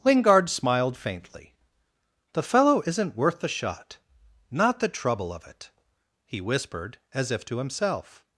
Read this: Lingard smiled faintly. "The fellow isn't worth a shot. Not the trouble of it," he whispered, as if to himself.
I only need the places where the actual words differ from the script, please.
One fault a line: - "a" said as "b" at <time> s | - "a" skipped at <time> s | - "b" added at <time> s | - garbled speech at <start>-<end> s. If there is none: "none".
- "a" said as "the" at 3.4 s